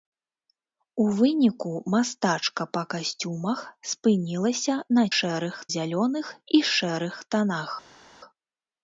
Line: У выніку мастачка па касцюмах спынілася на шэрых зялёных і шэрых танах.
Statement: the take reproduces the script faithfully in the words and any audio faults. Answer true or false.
true